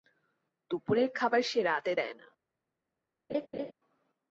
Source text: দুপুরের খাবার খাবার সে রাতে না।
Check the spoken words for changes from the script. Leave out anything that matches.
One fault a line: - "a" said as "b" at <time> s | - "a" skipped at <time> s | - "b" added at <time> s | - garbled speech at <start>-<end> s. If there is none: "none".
- "খাবার" skipped at 1.4 s
- "দেয়" added at 1.9 s